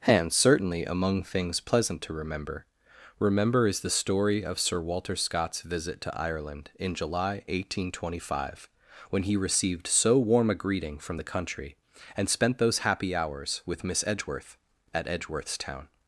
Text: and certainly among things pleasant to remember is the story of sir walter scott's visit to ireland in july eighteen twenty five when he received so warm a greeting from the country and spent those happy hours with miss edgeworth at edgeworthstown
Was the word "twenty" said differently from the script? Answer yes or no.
no